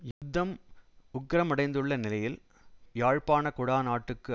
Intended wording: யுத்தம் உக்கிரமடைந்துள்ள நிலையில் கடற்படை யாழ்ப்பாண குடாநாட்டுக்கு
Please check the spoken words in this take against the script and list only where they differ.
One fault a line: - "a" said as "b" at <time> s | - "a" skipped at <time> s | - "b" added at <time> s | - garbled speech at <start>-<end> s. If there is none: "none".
- "கடற்படை" skipped at 2.4 s